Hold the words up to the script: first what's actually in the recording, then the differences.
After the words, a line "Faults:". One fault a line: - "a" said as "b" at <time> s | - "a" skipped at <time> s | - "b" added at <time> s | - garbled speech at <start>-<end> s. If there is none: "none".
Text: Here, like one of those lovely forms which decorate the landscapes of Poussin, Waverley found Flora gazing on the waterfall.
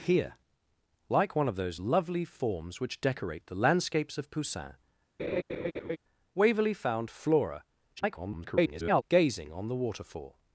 Here, like one of those lovely forms which decorate the landscapes of Poussin, Waverley found Flora [garbled] gazing on the waterfall.
Faults:
- garbled speech at 8.0-9.0 s